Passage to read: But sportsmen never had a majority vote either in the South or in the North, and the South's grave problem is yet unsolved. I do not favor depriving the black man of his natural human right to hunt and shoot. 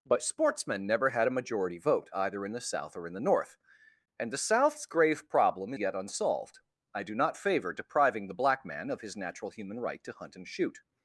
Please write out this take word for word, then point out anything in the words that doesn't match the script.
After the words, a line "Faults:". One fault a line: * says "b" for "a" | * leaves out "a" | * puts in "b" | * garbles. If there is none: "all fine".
But sportsmen never had a majority vote either in the South or in the North, and the South's grave problem yet unsolved. I do not favor depriving the black man of his natural human right to hunt and shoot.
Faults:
* leaves out "is"